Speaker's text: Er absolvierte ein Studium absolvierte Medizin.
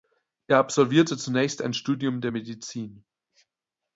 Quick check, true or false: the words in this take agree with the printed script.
false